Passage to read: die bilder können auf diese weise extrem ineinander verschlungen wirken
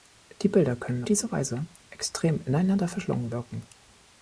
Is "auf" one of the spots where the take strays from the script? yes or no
yes